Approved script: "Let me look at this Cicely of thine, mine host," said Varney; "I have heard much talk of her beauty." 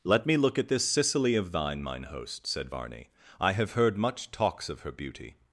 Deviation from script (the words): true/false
true